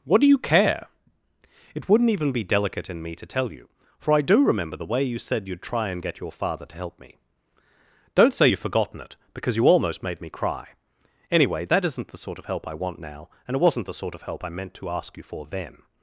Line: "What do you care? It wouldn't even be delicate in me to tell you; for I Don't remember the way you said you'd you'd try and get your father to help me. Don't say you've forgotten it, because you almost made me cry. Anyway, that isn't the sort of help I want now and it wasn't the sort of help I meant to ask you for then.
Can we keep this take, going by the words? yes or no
no